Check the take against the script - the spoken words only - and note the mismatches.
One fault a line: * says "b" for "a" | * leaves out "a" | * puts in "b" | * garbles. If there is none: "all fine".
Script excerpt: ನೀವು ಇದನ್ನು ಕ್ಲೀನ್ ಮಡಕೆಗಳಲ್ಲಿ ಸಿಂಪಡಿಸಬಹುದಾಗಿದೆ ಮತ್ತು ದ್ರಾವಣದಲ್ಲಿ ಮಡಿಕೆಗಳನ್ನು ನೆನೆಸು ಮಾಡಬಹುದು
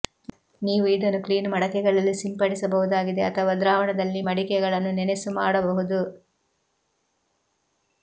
* says "ಅಥವಾ" for "ಮತ್ತು"